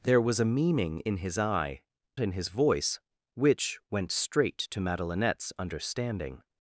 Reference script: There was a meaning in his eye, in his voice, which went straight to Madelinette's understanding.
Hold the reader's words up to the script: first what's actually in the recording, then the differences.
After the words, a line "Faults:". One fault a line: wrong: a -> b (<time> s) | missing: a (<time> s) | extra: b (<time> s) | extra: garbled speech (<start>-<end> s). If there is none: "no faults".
There was a meaning in his eye, in his voice, which went straight to Madelinette's understanding.
Faults:
no faults